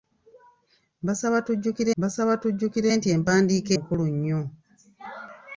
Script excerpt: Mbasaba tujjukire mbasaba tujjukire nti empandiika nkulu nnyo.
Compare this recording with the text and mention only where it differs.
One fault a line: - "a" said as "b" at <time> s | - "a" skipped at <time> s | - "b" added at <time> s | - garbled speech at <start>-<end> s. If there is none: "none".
none